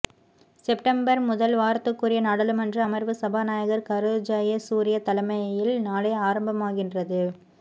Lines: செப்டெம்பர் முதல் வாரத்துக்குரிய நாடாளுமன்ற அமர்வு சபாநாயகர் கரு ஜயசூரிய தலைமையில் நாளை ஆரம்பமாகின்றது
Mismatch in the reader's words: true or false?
false